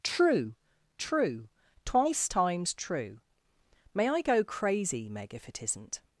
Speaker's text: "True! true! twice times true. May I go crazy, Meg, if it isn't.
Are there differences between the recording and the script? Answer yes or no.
no